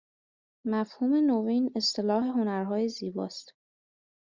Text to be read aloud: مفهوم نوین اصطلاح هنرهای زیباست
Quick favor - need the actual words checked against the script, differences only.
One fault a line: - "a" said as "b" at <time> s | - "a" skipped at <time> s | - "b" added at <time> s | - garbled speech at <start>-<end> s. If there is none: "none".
none